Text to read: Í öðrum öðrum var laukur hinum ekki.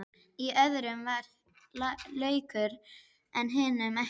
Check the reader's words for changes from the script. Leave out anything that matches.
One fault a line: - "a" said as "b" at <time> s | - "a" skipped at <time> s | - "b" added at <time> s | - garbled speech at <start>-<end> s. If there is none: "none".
- "öðrum" skipped at 1.0 s
- "en" added at 3.4 s